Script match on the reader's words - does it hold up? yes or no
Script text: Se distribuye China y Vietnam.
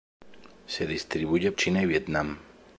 yes